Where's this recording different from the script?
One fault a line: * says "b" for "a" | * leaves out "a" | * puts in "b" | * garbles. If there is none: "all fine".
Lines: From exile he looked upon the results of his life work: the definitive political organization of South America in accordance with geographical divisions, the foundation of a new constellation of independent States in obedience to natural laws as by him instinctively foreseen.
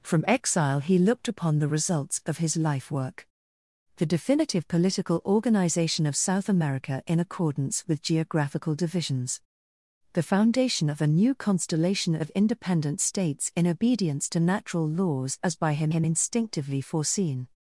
* puts in "him"